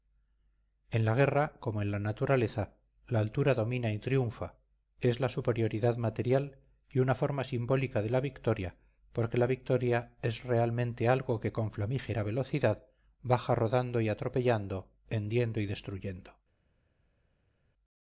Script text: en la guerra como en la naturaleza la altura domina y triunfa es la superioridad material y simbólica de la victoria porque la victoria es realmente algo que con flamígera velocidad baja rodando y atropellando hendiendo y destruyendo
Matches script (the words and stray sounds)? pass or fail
fail